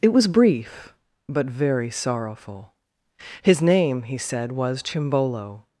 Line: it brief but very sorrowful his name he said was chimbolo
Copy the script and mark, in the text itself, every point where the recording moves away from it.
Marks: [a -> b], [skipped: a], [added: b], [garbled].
it [added: was] brief but very sorrowful his name he said was chimbolo